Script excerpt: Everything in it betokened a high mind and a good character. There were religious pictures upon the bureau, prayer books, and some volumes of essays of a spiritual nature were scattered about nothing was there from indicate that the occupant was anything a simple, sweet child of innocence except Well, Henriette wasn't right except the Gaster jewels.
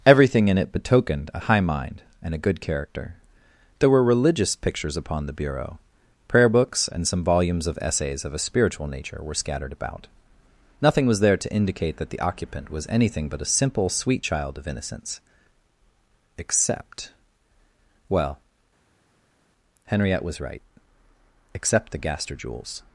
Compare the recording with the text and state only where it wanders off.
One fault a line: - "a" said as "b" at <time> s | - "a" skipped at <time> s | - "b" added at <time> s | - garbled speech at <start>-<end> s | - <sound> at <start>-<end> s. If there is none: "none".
- "from" said as "to" at 11.4 s
- "but" added at 13.3 s
- "wasn't" said as "was" at 20.3 s